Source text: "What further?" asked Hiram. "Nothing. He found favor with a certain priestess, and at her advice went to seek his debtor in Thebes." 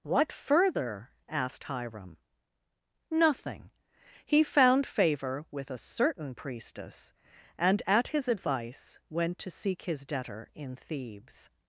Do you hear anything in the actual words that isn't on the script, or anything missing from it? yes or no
yes